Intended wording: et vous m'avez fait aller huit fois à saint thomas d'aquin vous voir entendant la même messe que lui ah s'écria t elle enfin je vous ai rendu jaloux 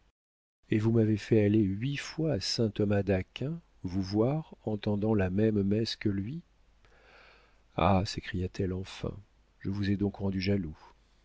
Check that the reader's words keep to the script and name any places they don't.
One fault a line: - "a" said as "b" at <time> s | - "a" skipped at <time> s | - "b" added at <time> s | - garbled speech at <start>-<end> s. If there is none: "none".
- "donc" added at 10.0 s